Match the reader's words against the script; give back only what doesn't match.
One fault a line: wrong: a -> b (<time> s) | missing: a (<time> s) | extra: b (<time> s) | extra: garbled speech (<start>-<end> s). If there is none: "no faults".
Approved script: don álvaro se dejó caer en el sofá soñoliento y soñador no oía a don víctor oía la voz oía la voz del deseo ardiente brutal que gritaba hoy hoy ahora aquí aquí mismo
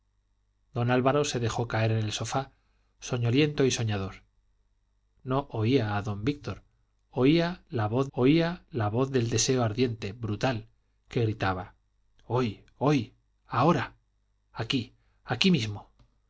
no faults